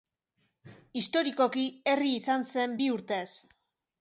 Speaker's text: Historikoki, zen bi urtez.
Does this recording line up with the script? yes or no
no